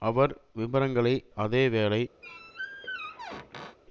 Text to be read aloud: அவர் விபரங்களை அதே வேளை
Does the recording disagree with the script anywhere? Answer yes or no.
no